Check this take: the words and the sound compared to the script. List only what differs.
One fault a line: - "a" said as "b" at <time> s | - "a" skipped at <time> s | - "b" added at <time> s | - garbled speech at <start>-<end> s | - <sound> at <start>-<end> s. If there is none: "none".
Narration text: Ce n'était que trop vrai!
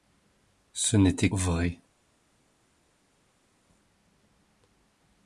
- "que trop" skipped at 1.3 s